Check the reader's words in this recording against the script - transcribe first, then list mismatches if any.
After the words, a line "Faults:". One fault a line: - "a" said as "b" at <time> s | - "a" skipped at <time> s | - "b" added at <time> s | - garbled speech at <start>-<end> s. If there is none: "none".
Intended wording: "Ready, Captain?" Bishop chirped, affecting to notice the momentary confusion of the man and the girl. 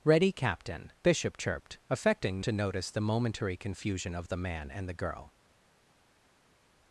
"Ready, Captain?" Bishop chirped, affecting to notice the momentary confusion of the man and the girl.
Faults:
none